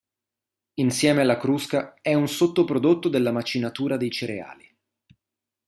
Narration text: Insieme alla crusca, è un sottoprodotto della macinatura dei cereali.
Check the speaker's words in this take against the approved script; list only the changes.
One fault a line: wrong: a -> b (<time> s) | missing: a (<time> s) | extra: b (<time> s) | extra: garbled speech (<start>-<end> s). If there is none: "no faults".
no faults